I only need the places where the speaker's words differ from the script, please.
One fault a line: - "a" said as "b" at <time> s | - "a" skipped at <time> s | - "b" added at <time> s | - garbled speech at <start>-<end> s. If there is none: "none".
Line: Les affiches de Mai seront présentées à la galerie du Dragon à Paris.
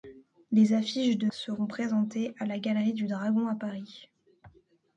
- "Mai" skipped at 1.3 s